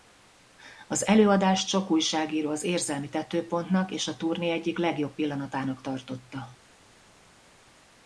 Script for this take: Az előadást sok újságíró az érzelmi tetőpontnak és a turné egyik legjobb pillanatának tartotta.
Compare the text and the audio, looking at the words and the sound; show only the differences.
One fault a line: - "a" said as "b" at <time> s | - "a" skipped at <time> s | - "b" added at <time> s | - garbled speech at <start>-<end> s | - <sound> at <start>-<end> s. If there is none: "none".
none